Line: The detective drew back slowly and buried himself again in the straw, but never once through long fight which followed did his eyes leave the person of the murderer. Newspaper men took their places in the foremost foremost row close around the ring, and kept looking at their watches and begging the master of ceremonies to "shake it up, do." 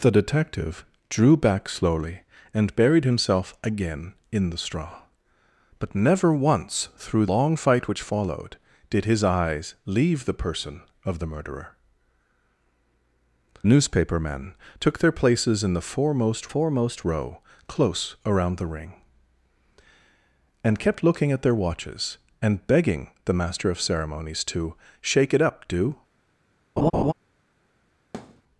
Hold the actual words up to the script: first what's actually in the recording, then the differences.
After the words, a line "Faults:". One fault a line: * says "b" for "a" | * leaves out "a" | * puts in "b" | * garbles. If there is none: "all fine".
The detective drew back slowly and buried himself again in the straw, but never once through long fight which followed did his eyes leave the person of the murderer. Newspaper men took their places in the foremost foremost row close around the ring, and kept looking at their watches and begging the master of ceremonies to "shake it up, do."
Faults:
all fine